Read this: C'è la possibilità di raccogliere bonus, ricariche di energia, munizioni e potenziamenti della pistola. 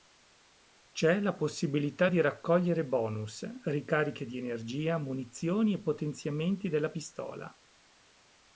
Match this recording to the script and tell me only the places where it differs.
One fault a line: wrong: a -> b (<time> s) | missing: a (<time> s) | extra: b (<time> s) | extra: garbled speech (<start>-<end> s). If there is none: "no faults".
no faults